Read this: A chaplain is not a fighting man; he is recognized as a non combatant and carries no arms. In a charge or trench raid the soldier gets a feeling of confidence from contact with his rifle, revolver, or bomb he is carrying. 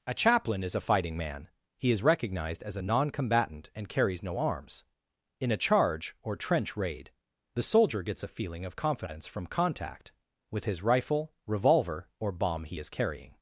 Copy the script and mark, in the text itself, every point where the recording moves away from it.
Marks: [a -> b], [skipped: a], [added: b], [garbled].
A chaplain is [skipped: not] a fighting man; he is recognized as a non combatant and carries no arms. In a charge or trench raid the soldier gets a feeling of confidence from contact with his rifle, revolver, or bomb he is carrying.